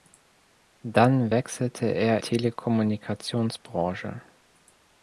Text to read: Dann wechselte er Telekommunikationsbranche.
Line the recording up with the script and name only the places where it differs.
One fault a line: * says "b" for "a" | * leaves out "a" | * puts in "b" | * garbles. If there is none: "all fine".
all fine